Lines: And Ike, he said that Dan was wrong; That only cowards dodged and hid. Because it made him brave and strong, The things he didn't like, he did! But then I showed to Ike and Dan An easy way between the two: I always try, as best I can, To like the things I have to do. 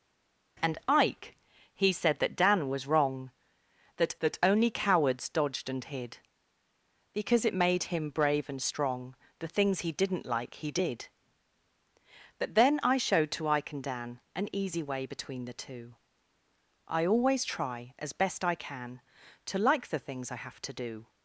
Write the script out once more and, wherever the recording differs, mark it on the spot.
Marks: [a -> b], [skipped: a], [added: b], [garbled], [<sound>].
And Ike, he said that Dan was wrong; That [added: That] only cowards dodged and hid. Because it made him brave and strong, The things he didn't like, he did! But then I showed to Ike and Dan An easy way between the two: I always try, as best I can, To like the things I have to do.